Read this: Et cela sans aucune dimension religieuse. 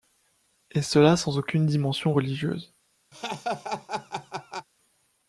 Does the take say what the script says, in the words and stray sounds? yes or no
no